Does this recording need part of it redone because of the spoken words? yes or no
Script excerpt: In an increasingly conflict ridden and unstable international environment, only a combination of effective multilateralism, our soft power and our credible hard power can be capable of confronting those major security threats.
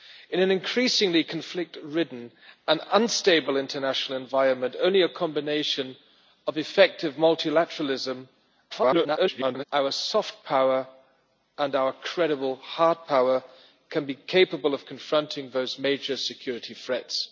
yes